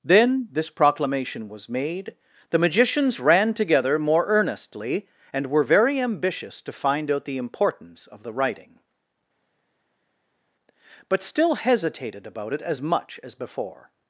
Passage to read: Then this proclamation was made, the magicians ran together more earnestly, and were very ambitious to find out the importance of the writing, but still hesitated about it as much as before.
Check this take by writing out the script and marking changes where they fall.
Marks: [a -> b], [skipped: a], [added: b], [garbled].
Then this proclamation was made, the magicians ran together more earnestly, and were very ambitious to find out the importance of the writing, but still hesitated about it as much as before.